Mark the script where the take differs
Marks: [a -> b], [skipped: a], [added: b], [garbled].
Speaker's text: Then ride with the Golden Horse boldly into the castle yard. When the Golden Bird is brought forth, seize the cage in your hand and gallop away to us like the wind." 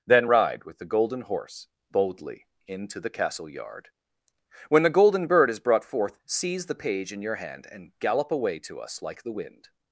Then ride with the Golden Horse boldly into the castle yard. When the Golden Bird is brought forth, seize the [cage -> page] in your hand and gallop away to us like the wind."